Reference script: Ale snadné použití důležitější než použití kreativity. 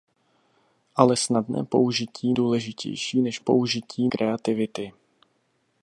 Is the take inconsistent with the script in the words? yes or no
no